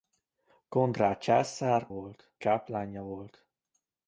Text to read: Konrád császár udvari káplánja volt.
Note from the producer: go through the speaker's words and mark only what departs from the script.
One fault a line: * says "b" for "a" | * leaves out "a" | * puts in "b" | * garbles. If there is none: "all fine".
* says "volt" for "udvari"